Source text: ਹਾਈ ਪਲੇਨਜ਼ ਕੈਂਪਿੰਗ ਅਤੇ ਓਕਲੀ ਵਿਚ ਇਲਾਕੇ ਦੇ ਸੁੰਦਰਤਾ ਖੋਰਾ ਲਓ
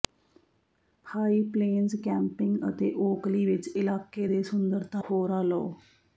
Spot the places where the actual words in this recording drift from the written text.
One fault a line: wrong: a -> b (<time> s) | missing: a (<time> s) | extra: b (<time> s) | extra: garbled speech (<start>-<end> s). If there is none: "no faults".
no faults